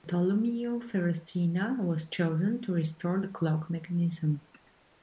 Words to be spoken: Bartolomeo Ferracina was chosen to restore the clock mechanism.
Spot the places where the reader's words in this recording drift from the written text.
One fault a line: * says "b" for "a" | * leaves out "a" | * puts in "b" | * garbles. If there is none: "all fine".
all fine